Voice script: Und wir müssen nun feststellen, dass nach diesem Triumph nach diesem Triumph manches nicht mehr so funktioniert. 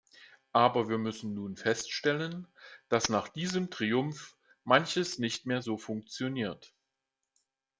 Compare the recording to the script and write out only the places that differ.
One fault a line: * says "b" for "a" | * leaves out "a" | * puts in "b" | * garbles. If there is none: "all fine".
* says "Aber" for "Und"
* leaves out "nach diesem Triumph"